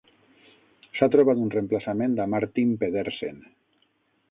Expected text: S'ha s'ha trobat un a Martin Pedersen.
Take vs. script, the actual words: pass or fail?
fail